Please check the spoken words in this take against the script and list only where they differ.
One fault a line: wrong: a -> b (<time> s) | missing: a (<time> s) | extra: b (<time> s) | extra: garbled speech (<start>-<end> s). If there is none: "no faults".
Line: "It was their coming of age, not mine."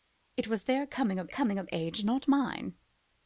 extra: coming of (1.3 s)